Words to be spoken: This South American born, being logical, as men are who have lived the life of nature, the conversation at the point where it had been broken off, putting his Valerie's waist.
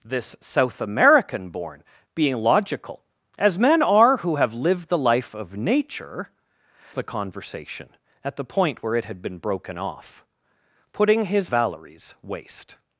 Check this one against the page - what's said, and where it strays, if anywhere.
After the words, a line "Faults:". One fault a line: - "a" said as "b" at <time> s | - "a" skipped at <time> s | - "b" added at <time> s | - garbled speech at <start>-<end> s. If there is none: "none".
This South American born, being logical, as men are who have lived the life of nature, the conversation at the point where it had been broken off, putting his Valerie's waist.
Faults:
none